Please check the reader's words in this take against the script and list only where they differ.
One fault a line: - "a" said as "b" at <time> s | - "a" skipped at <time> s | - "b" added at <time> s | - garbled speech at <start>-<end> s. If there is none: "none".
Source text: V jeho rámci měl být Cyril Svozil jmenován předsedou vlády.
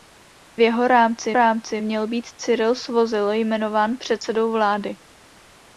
- "rámci" added at 1.3 s